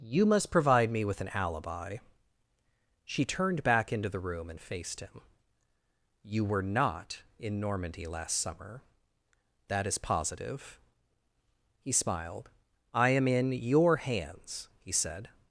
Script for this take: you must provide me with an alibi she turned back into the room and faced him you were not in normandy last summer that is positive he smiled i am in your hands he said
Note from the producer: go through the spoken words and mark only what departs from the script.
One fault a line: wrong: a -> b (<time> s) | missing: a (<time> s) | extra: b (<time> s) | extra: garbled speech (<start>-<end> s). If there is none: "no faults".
no faults